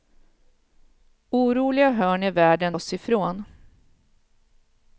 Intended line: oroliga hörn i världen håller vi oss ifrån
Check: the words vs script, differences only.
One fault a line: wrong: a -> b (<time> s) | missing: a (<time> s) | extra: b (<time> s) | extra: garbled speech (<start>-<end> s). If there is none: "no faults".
missing: håller vi (2.8 s)